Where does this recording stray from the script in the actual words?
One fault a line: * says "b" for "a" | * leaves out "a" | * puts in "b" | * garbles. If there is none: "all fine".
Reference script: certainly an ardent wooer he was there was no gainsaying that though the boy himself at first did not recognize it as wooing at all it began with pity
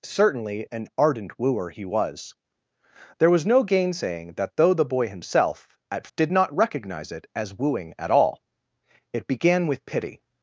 * leaves out "first"